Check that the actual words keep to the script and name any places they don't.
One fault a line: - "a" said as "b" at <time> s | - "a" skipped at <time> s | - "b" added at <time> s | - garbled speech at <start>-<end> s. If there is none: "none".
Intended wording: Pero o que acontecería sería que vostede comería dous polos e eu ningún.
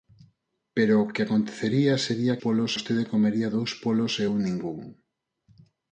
- "que" said as "polos" at 2.4 s